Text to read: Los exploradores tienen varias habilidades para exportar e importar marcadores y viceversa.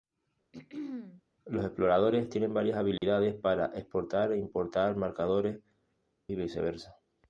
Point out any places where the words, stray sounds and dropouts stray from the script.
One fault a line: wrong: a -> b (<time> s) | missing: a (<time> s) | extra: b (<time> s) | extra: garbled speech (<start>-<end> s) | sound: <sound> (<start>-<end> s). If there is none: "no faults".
sound: throat clearing (0.5-1.2 s)
sound: dropout (3.0-3.0 s)